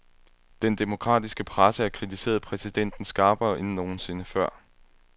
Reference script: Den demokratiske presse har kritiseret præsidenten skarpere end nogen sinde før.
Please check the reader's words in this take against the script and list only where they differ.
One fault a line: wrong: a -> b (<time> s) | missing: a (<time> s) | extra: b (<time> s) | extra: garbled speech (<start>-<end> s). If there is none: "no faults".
no faults